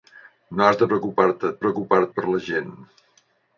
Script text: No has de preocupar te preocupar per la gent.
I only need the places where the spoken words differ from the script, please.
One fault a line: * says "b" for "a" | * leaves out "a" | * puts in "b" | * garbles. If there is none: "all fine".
all fine